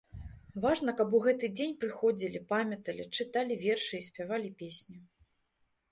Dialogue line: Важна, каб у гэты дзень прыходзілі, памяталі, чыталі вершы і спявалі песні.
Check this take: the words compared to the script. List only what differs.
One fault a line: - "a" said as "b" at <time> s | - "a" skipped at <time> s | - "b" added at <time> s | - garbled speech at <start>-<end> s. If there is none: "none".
none